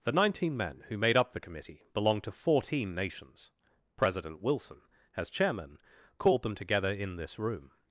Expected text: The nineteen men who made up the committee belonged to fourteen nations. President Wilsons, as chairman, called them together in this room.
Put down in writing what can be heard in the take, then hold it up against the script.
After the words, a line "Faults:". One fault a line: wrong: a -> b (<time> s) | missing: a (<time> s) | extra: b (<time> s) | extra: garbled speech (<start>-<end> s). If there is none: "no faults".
The nineteen men who made up the committee belonged to fourteen nations. President Wilson, as chairman, called them together in this room.
Faults:
wrong: Wilsons -> Wilson (4.4 s)